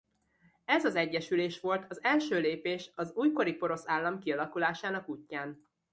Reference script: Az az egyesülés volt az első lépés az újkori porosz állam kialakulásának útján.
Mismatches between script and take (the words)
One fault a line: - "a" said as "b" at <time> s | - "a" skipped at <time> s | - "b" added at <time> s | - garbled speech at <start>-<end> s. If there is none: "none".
- "Az" said as "Ez" at 0.7 s